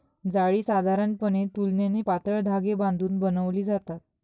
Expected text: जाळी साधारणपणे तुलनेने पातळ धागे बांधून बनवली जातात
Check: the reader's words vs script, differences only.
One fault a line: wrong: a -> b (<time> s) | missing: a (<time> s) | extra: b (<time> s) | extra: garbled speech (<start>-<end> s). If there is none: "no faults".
no faults